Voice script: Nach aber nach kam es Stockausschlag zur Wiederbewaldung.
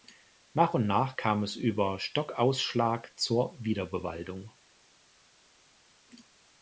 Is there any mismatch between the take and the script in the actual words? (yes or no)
yes